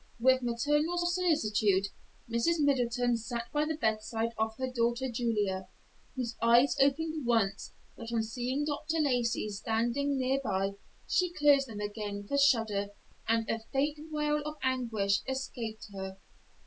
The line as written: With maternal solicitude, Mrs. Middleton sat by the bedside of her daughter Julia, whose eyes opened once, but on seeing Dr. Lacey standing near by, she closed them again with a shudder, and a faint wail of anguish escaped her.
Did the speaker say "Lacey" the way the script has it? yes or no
yes